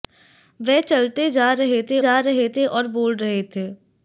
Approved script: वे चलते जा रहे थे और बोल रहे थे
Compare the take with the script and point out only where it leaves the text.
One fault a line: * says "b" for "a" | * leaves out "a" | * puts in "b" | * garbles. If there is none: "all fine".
* puts in "जा रहे थे"